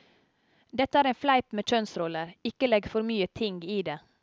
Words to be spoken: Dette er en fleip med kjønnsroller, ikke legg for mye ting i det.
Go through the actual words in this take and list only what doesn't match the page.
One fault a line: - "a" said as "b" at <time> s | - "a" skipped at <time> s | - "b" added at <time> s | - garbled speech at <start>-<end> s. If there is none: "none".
none